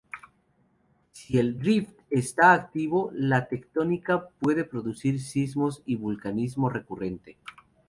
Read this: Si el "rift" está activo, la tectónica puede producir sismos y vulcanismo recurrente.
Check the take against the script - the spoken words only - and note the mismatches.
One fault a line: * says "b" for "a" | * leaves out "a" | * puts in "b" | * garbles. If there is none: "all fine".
all fine